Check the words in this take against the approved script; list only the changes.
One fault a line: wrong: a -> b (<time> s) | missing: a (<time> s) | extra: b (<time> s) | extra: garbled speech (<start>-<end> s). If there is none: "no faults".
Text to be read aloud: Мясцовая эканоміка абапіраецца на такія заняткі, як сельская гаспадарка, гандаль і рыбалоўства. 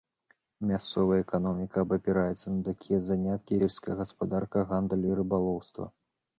missing: як (3.5 s)